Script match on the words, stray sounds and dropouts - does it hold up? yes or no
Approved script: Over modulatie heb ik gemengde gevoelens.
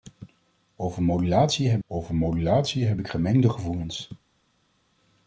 no